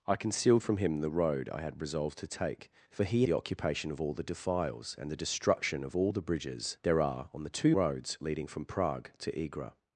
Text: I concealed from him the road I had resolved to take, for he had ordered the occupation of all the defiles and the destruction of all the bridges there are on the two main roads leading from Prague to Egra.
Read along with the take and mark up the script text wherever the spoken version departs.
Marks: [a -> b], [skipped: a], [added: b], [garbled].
I concealed from him the road I had resolved to take, for he [skipped: had ordered] the occupation of all the defiles and the destruction of all the bridges there are on the two [skipped: main] roads leading from Prague to Egra.